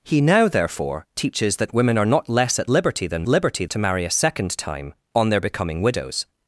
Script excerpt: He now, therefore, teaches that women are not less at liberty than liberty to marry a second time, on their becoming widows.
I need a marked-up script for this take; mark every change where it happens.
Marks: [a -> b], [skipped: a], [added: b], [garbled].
He now, therefore, teaches that women are not less at liberty than liberty to marry a second time, on their becoming widows.